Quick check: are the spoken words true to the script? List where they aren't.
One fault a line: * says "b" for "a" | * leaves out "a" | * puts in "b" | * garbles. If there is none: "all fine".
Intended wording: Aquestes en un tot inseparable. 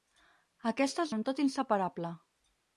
all fine